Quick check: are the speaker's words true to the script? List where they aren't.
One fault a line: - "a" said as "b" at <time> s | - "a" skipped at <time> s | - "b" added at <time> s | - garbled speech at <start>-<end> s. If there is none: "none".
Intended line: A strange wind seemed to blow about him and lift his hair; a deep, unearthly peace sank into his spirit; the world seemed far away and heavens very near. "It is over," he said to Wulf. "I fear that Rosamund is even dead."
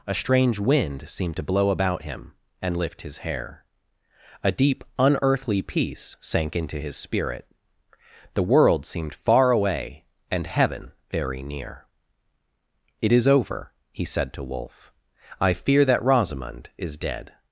- "heavens" said as "heaven" at 10.5 s
- "even" skipped at 17.0 s